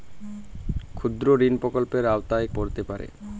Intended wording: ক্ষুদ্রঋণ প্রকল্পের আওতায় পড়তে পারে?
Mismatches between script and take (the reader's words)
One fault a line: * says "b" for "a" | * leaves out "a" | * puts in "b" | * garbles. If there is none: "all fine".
all fine